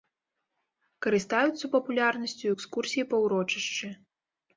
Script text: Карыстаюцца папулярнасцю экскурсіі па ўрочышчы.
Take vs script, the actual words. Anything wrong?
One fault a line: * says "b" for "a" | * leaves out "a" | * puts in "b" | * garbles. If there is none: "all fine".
all fine